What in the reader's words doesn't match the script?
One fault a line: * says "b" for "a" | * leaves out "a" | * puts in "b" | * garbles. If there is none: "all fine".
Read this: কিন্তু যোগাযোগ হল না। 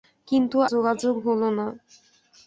all fine